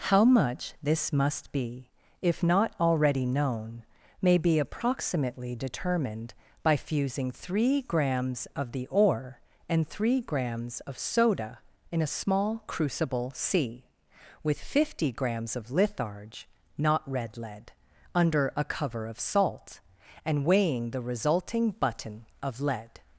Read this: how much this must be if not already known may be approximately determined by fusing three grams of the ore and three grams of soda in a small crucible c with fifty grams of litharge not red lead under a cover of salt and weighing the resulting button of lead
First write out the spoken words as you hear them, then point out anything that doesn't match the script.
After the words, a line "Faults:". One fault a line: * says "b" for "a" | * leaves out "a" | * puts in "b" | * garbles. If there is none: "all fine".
how much this must be if not already known may be approximately determined by fusing three grams of the ore and three grams of soda in a small crucible c with fifty grams of litharge not red lead under a cover of salt and weighing the resulting button of lead
Faults:
all fine